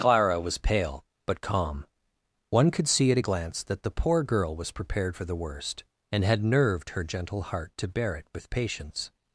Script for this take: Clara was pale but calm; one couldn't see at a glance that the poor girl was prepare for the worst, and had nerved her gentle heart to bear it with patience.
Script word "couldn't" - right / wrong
wrong